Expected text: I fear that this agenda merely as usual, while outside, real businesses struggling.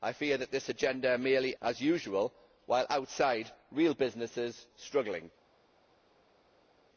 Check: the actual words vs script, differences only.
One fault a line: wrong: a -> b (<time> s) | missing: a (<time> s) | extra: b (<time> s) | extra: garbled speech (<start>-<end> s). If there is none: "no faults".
no faults